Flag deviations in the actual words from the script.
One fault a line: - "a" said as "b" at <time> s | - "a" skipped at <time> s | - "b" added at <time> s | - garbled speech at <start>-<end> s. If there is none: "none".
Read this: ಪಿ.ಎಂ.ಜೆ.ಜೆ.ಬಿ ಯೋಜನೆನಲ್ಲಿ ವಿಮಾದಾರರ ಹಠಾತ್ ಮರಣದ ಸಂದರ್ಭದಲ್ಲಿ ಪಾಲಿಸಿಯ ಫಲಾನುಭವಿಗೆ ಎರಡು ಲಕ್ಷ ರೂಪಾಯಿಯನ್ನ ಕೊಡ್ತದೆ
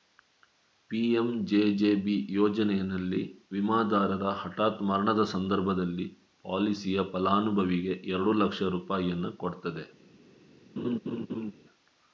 none